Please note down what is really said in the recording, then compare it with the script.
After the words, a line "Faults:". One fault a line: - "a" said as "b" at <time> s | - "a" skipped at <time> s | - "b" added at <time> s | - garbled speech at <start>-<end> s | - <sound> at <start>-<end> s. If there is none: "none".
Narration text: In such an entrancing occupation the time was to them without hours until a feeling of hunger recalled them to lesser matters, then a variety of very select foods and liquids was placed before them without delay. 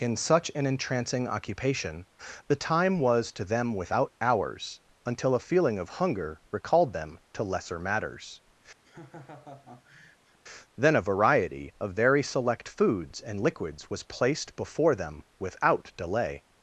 In such an entrancing occupation the time was to them without hours until a feeling of hunger recalled them to lesser matters, then a variety of very select foods and liquids was placed before them without delay.
Faults:
- laugh at 8.8-10.4 s